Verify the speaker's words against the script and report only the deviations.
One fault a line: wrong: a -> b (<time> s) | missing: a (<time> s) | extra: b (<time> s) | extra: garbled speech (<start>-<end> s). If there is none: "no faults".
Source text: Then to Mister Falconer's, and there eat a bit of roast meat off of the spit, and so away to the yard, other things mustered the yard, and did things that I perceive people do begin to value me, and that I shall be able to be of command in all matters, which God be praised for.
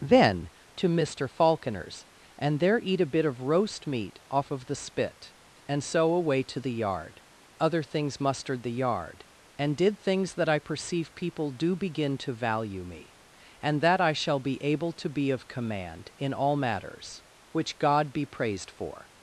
no faults